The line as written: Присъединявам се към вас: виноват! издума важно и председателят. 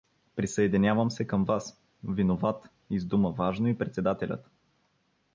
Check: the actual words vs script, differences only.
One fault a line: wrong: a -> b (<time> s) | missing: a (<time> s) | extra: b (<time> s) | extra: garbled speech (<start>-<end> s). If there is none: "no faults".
no faults